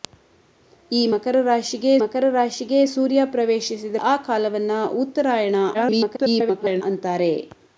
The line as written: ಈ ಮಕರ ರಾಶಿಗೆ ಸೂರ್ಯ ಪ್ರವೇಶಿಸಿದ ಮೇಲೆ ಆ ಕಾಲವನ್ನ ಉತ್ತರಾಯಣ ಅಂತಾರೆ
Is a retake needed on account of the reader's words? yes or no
yes